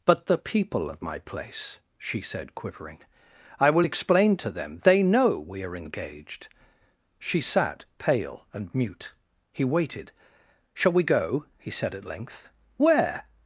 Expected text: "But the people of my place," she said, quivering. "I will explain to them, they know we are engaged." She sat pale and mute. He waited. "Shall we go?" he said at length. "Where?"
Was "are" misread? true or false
false